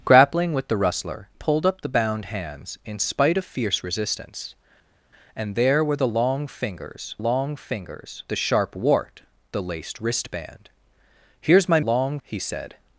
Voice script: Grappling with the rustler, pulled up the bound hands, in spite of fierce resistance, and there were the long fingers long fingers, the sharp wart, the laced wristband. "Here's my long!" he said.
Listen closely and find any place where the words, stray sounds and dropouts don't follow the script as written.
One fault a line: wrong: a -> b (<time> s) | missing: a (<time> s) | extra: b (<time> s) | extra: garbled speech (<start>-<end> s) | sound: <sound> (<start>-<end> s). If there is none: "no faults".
no faults